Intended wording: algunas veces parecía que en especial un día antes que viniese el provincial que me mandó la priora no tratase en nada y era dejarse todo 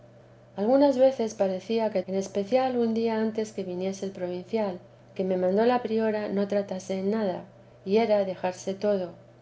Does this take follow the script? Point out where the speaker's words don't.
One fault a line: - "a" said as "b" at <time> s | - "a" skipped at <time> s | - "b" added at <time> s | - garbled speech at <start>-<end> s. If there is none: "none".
none